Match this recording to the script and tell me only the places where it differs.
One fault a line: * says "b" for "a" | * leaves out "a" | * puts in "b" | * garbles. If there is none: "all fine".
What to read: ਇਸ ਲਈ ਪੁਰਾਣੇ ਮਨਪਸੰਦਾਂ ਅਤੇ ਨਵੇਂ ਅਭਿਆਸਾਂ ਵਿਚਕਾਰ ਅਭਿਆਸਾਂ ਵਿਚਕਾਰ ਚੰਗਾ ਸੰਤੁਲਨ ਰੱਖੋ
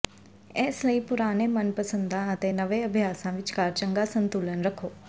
* leaves out "ਅਭਿਆਸਾਂ ਵਿਚਕਾਰ"